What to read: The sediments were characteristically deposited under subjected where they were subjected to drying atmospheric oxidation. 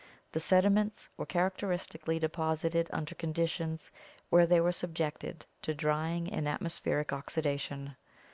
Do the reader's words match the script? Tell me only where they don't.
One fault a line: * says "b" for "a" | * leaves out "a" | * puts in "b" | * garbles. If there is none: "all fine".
* says "conditions" for "subjected"
* puts in "and"